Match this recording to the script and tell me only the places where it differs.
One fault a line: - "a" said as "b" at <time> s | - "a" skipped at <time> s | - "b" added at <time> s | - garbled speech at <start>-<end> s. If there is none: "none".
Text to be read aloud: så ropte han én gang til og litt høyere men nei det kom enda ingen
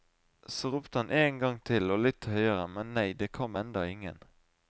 none